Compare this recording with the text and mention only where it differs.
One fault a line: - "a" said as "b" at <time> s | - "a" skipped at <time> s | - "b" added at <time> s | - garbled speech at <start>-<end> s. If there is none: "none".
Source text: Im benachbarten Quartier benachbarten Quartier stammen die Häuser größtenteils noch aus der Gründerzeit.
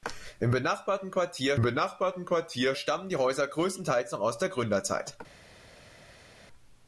none